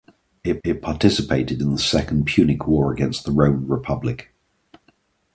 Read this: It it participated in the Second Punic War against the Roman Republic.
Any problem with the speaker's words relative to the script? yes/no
no